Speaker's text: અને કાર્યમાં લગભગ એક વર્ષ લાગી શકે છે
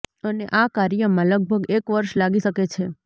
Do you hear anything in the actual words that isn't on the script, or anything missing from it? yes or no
yes